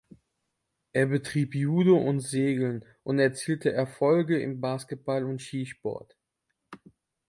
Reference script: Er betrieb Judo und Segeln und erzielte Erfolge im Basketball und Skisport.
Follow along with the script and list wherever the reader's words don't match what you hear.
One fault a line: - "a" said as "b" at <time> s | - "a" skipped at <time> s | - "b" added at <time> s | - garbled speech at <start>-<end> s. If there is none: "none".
none